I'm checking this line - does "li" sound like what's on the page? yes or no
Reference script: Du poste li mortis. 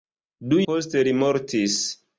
yes